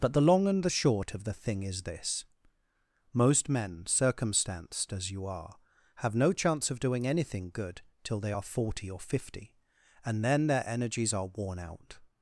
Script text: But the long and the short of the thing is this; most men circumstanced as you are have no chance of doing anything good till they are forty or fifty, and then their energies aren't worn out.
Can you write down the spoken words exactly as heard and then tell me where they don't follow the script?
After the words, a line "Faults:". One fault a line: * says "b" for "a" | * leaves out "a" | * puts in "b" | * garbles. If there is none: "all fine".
But the long and the short of the thing is this; most men circumstanced as you are have no chance of doing anything good till they are forty or fifty, and then their energies are worn out.
Faults:
* says "are" for "aren't"